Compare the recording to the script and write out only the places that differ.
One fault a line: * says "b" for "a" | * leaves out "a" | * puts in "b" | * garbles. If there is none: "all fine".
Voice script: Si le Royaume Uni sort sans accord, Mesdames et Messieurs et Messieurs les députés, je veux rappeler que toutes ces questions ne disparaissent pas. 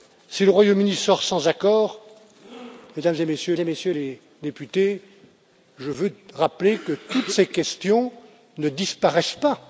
all fine